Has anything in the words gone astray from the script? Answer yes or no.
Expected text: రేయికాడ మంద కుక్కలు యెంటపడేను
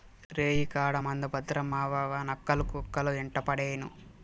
yes